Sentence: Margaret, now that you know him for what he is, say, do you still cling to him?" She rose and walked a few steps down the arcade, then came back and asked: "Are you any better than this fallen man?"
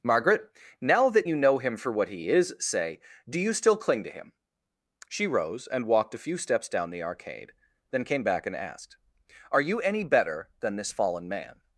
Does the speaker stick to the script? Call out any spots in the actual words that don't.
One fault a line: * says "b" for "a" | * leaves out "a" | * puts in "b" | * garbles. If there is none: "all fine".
all fine